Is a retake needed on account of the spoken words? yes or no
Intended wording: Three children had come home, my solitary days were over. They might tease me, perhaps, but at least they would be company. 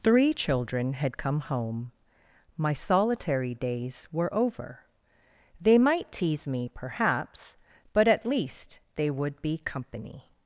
no